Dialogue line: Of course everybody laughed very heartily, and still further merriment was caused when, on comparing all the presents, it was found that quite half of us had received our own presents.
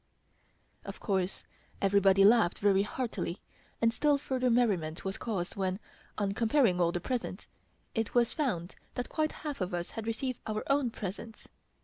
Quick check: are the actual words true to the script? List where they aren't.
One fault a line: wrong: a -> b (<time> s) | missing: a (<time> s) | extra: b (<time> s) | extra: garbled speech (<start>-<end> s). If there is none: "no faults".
no faults